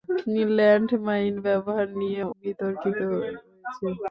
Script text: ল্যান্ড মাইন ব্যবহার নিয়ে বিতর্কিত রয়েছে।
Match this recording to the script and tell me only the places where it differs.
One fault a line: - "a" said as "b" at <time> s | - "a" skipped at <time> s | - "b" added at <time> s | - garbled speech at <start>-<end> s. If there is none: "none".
none